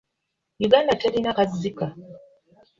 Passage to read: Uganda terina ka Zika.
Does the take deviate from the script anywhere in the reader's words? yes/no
no